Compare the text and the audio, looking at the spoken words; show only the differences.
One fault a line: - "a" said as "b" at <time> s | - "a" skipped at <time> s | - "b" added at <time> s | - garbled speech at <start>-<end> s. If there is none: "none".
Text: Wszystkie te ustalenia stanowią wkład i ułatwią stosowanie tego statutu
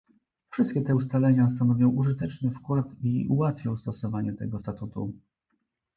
- "użyteczny" added at 1.9 s